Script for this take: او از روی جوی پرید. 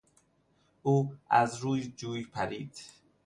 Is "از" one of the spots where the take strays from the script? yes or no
no